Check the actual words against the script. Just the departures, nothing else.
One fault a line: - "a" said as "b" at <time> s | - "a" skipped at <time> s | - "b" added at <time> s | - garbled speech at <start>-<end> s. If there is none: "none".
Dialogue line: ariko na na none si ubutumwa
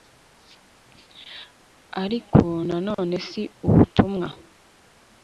- "na" skipped at 2.8 s